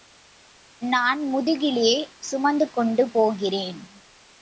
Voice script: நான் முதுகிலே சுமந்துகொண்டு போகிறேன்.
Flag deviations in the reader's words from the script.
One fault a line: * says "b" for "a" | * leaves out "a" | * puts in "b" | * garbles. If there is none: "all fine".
all fine